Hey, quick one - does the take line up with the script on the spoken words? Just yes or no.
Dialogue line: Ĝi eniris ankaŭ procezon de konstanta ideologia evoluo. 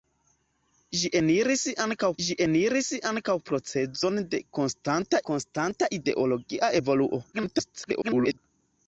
no